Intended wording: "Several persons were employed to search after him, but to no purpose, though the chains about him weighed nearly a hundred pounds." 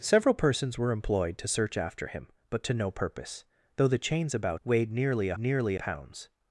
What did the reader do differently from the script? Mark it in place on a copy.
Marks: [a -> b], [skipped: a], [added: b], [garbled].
"Several persons were employed to search after him, but to no purpose, though the chains about [skipped: him] weighed nearly a [hundred -> nearly] pounds."